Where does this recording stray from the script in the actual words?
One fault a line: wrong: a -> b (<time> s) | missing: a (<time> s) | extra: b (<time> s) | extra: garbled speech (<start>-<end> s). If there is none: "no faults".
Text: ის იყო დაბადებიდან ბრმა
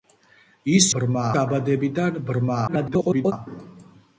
wrong: იყო -> ბრმა (1.0 s)
extra: garbled speech (2.7-3.3 s)